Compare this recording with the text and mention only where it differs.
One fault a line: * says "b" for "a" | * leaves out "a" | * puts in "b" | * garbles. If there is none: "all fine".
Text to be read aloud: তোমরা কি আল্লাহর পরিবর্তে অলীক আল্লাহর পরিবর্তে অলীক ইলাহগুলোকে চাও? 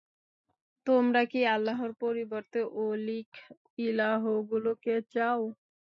* leaves out "আল্লাহর পরিবর্তে অলীক"